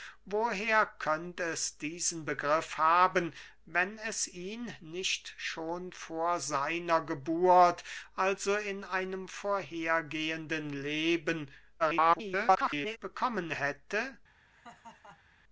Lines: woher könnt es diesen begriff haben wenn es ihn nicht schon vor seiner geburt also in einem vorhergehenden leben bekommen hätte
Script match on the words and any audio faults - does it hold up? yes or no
no